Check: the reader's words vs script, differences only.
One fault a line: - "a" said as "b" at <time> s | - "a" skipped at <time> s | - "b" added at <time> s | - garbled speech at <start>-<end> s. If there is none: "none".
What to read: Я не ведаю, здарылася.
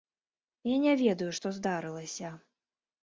- "што" added at 1.4 s